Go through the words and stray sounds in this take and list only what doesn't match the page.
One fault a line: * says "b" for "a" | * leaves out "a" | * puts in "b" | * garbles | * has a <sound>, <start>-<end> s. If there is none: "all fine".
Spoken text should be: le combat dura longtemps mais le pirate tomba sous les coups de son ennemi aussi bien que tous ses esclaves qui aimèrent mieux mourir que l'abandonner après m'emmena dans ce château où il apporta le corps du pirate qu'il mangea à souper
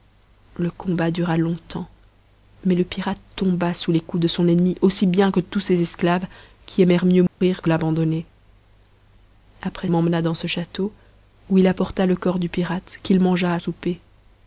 * has a dropout, 7.3-7.4 s